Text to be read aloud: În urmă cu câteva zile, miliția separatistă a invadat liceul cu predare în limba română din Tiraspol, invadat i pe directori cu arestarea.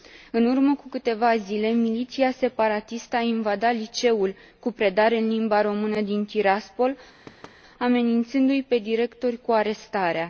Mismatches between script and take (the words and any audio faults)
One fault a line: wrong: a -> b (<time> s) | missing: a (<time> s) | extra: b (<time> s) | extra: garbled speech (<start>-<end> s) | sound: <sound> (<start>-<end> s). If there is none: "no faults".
sound: thud (7.3-7.6 s)
wrong: invadat -> amenințându (7.8 s)